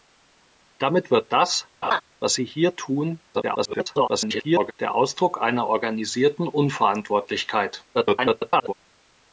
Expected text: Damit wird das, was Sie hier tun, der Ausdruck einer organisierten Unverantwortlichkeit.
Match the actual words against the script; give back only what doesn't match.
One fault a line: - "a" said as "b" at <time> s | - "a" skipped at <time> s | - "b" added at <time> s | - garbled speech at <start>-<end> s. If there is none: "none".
- garbled speech at 3.3-4.7 s
- garbled speech at 7.9-8.7 s